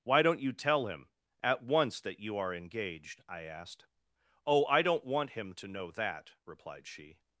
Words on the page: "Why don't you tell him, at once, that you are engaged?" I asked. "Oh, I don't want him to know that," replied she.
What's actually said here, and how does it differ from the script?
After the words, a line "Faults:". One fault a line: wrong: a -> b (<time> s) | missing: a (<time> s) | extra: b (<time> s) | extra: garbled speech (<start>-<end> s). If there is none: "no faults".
"Why don't you tell him, at once, that you are engaged?" I asked. "Oh, I don't want him to know that," replied she.
Faults:
no faults